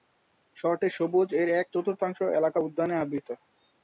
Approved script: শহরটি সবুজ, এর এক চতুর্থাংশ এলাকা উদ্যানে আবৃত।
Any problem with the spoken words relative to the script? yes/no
no